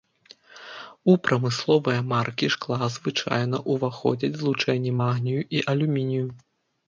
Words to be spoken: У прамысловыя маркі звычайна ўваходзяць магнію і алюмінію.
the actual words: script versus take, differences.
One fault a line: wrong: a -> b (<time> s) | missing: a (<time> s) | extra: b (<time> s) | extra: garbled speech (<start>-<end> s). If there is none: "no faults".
extra: шкла (2.5 s)
extra: злучэнні (4.4 s)